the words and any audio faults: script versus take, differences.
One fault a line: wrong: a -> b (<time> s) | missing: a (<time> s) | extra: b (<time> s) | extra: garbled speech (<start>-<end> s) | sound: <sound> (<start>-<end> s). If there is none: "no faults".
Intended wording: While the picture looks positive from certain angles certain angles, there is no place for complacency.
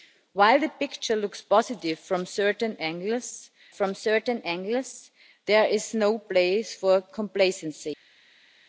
no faults